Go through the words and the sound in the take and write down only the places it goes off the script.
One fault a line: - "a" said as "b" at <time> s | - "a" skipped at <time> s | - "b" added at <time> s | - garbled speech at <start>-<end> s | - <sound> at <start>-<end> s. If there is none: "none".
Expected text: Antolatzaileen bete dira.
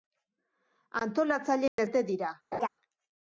- dropout at 1.7-1.8 s
- laugh at 2.5-2.7 s